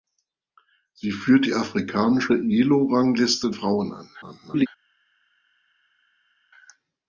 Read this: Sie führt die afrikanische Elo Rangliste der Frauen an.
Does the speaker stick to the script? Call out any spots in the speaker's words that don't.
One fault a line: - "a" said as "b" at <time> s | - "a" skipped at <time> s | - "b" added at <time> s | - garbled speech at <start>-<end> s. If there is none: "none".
- "der" skipped at 3.5 s
- garbled speech at 4.2-4.7 s